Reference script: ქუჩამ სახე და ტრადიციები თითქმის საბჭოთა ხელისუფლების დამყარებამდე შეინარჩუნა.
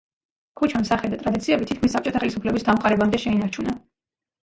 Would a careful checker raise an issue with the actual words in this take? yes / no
no